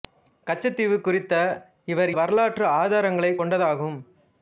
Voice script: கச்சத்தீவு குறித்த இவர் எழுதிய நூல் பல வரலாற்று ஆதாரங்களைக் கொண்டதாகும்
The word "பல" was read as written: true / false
false